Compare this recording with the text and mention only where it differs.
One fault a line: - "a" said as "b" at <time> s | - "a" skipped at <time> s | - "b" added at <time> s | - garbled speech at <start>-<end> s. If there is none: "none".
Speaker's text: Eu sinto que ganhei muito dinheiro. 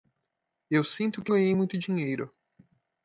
none